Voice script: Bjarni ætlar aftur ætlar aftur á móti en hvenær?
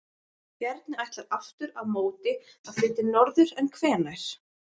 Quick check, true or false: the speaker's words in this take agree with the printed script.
false